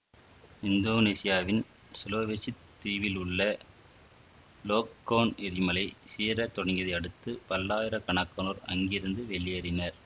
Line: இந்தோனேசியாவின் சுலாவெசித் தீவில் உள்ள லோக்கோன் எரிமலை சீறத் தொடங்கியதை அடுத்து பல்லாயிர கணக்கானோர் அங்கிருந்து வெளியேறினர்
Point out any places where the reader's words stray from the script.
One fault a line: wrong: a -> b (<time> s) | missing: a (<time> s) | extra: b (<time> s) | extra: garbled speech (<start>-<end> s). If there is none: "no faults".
no faults